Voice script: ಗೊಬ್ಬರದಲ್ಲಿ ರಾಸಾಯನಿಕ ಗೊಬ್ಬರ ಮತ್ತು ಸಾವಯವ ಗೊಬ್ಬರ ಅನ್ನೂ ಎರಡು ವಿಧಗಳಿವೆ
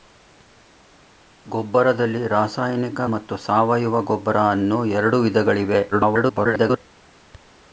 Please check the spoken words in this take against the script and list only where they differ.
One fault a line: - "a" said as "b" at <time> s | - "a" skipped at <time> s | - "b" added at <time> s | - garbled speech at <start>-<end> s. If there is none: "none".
- "ಗೊಬ್ಬರ" skipped at 3.0 s
- garbled speech at 5.9-6.8 s